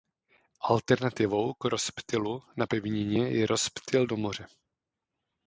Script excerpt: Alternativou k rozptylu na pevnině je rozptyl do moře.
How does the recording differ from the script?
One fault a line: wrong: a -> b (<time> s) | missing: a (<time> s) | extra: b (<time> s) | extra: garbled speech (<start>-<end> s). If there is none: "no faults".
no faults